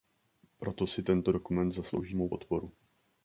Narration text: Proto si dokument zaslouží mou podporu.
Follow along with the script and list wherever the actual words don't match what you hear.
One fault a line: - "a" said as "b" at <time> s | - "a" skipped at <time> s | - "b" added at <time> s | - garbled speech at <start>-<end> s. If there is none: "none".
- "tento" added at 1.0 s